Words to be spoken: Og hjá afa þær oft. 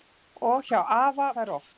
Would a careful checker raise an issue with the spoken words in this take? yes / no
no